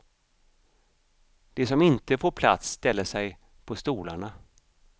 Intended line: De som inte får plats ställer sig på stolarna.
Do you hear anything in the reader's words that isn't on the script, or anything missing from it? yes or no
no